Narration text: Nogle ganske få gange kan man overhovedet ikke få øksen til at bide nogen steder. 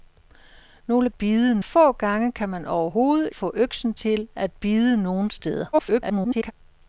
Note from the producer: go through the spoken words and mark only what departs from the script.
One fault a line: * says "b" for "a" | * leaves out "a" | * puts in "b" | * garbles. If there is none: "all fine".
* says "bide" for "ganske"
* leaves out "ikke"
* garbles